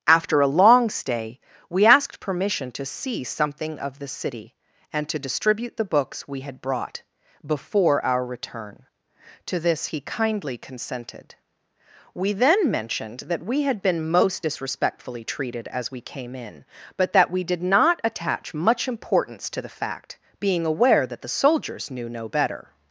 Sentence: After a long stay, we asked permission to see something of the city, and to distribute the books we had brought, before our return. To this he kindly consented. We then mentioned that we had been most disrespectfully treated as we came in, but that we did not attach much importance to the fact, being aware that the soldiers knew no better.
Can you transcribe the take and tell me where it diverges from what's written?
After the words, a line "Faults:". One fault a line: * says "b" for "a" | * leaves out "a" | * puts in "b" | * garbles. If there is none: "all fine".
After a long stay, we asked permission to see something of the city, and to distribute the books we had brought, before our return. To this he kindly consented. We then mentioned that we had been most disrespectfully treated as we came in, but that we did not attach much importance to the fact, being aware that the soldiers knew no better.
Faults:
all fine